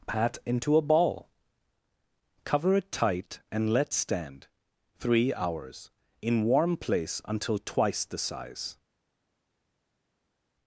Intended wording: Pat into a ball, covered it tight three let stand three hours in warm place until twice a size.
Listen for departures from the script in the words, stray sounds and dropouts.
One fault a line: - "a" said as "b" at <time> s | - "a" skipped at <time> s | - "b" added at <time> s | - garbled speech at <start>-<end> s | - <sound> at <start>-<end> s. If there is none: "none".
- "covered" said as "cover" at 2.4 s
- "three" said as "and" at 3.5 s
- "a" said as "the" at 8.1 s